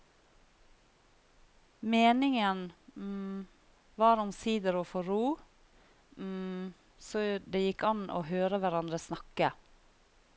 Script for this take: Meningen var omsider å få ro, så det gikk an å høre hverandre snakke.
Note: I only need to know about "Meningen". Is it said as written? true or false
true